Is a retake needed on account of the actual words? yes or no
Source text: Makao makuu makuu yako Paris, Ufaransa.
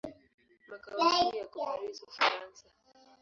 yes